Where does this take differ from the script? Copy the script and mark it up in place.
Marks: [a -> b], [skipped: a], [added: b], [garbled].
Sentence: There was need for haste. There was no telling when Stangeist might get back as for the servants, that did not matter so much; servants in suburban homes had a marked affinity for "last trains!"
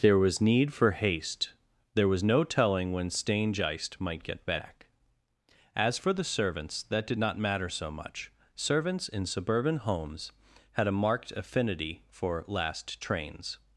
There was need for haste. There was no telling when Stangeist might get back as for the servants, that did not matter so much; servants in suburban homes had a marked affinity for "last trains!"